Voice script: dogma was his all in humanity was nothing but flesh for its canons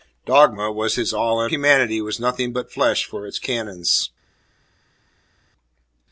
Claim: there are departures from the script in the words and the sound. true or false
false